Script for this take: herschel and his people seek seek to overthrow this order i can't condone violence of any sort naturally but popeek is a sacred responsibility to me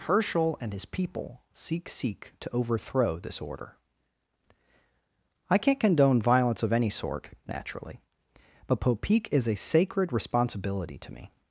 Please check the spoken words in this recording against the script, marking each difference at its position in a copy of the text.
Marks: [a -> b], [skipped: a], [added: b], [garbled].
herschel and his people seek seek to overthrow this order i can't condone violence of any sort naturally but popeek is a sacred responsibility to me